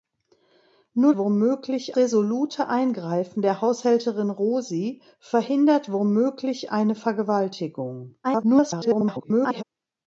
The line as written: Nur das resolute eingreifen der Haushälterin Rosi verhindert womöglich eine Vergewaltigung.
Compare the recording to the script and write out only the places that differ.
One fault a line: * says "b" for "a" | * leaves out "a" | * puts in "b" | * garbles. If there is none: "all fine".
* says "womöglich" for "das"
* garbles